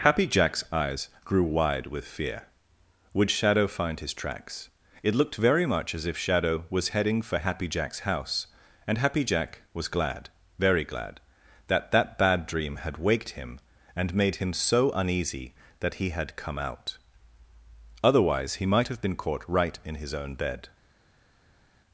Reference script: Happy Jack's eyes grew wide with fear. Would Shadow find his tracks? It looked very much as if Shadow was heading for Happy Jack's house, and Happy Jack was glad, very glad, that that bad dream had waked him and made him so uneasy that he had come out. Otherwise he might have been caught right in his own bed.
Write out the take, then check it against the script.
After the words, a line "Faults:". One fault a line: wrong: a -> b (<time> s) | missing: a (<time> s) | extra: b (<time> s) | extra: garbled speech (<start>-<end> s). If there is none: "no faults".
Happy Jack's eyes grew wide with fear. Would Shadow find his tracks? It looked very much as if Shadow was heading for Happy Jack's house, and Happy Jack was glad, very glad, that that bad dream had waked him and made him so uneasy that he had come out. Otherwise he might have been caught right in his own bed.
Faults:
no faults